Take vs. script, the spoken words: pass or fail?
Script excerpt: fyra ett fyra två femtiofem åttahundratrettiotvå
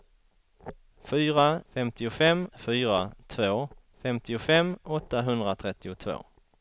fail